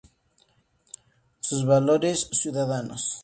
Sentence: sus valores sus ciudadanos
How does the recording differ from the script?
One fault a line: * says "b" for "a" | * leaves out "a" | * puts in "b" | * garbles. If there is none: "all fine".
* leaves out "sus"